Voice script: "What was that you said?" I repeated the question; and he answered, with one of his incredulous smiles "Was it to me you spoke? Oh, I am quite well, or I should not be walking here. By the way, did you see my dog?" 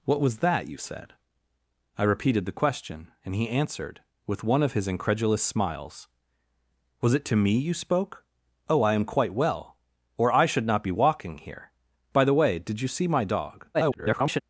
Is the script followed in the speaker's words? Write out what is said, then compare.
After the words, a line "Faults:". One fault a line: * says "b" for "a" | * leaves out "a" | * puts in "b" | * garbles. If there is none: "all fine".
"What was that you said?" I repeated the question; and he answered, with one of his incredulous smiles "Was it to me you spoke? Oh, I am quite well, or I should not be walking here. By the way, did you see my dog?" [garbled]
Faults:
* garbles